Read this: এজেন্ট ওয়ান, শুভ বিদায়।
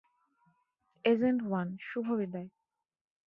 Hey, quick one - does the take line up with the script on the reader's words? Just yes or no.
yes